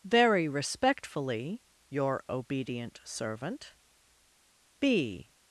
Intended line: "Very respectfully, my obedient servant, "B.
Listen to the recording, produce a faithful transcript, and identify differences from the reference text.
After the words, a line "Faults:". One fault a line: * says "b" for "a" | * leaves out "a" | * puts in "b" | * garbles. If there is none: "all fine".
"Very respectfully, your obedient servant, "B.
Faults:
* says "your" for "my"